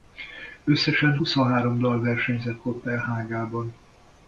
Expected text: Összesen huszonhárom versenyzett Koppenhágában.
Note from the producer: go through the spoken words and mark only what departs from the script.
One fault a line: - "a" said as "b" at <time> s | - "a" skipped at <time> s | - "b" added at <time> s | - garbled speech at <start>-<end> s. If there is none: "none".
- "dal" added at 1.8 s